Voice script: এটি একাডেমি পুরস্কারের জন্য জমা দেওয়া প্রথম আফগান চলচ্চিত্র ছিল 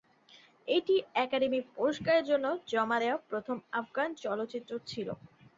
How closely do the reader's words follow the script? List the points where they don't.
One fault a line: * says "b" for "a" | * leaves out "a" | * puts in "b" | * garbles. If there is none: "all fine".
all fine